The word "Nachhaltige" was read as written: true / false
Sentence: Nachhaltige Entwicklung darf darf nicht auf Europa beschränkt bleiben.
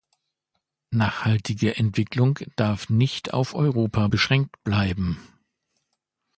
true